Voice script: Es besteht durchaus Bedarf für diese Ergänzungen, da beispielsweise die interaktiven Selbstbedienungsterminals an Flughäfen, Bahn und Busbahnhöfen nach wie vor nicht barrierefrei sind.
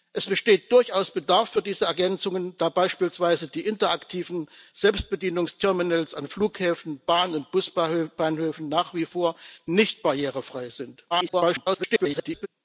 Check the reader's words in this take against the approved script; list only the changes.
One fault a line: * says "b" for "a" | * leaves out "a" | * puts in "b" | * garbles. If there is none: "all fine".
* garbles